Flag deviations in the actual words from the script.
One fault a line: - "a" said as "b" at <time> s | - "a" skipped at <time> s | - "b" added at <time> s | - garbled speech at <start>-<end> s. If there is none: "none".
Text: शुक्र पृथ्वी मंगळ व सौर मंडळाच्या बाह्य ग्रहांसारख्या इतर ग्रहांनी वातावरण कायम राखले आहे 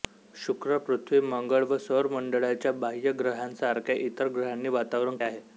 - "कायम राखले" skipped at 5.2 s